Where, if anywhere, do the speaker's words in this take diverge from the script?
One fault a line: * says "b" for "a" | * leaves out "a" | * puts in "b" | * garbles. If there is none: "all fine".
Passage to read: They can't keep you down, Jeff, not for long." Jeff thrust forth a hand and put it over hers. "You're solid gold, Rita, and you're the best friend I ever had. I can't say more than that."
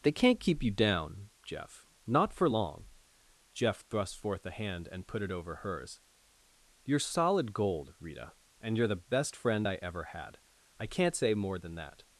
all fine